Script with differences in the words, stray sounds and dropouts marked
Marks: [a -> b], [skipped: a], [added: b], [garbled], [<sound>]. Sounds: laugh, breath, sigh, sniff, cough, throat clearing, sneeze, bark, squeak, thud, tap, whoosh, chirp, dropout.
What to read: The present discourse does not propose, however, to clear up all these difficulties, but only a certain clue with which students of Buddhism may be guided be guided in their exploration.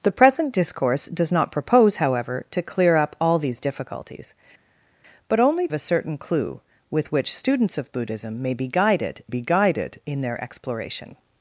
The present discourse does not propose, however, to clear up all these difficulties, but only a certain clue with which students of Buddhism may be guided be guided in their exploration.